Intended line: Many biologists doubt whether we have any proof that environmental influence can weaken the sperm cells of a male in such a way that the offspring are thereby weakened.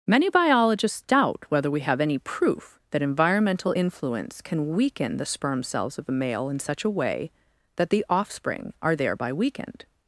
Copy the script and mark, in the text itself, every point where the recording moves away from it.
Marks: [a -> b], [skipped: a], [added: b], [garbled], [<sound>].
Many biologists doubt whether we have any proof that environmental influence can weaken the sperm cells of a male in such a way that the offspring are thereby weakened.